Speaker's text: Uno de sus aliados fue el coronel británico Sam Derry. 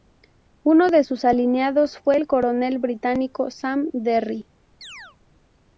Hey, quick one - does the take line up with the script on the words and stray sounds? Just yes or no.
no